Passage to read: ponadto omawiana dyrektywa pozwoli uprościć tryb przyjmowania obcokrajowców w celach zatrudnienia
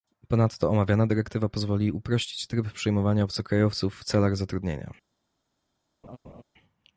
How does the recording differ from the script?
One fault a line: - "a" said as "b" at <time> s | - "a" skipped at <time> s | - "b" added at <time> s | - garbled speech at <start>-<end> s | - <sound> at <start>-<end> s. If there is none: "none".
- laugh at 6.0-6.4 s